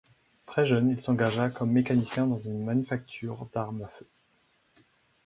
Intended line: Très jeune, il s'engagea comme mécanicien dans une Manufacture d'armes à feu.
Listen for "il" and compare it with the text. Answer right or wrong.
right